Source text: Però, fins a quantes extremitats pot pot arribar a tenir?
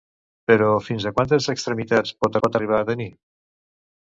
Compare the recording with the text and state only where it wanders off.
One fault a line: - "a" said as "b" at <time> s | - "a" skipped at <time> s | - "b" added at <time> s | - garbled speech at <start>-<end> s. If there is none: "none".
none